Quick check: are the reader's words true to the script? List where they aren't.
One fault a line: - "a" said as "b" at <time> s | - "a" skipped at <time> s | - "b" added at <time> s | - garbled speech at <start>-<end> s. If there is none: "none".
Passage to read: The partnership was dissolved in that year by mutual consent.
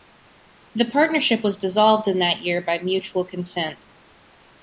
none